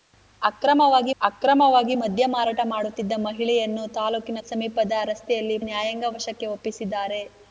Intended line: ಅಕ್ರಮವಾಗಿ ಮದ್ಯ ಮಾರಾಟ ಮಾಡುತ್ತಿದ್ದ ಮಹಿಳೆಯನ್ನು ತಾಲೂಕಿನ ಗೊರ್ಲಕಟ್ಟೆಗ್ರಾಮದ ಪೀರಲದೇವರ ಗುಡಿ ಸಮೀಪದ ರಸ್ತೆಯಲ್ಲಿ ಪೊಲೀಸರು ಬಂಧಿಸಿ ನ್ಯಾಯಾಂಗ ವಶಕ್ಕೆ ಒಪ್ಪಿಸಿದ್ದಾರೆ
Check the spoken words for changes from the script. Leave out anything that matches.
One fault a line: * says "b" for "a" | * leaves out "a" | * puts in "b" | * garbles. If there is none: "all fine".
* puts in "ಅಕ್ರಮವಾಗಿ"
* leaves out "ಗೊರ್ಲಕಟ್ಟೆಗ್ರಾಮದ ಪೀರಲದೇವರ ಗುಡಿ"
* leaves out "ಪೊಲೀಸರು ಬಂಧಿಸಿ"